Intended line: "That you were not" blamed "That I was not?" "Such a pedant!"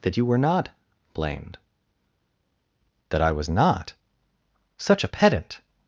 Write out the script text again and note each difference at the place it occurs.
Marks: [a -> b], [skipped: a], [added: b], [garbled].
"That you were not" blamed "That I was not?" "Such a pedant!"